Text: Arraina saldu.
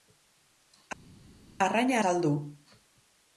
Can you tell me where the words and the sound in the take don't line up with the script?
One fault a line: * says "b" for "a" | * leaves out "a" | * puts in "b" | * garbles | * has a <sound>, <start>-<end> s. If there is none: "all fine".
all fine